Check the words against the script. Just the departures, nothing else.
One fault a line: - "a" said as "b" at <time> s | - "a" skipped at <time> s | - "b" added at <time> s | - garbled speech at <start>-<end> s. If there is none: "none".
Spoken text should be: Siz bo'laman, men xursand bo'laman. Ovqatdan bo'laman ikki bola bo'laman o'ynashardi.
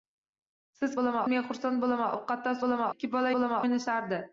none